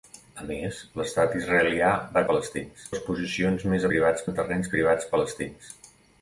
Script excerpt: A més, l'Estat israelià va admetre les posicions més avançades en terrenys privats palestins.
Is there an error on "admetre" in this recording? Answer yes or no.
yes